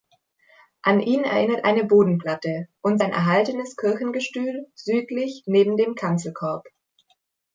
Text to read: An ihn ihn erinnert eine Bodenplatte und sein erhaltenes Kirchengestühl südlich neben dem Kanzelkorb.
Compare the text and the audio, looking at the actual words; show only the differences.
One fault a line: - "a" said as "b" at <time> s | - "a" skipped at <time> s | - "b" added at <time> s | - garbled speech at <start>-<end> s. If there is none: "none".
- "ihn" skipped at 1.2 s